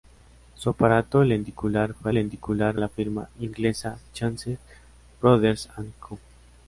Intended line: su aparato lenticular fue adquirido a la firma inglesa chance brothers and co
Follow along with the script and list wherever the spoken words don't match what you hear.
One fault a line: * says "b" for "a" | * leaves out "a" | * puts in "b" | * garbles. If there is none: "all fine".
* says "lenticular" for "adquirido"